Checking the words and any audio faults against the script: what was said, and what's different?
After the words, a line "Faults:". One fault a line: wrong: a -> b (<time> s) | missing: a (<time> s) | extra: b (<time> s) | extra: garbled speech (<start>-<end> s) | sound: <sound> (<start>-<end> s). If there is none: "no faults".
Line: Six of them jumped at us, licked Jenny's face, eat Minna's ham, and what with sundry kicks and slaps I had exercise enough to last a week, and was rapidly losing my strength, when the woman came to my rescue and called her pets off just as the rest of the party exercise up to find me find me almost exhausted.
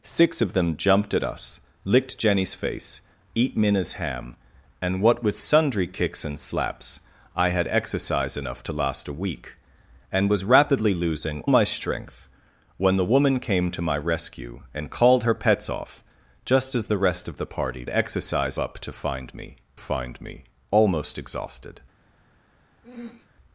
Six of them jumped at us, licked Jenny's face, eat Minna's ham, and what with sundry kicks and slaps I had exercise enough to last a week, and was rapidly losing my strength, when the woman came to my rescue and called her pets off just as the rest of the party exercise up to find me find me almost exhausted.
Faults:
sound: throat clearing (22.8-23.3 s)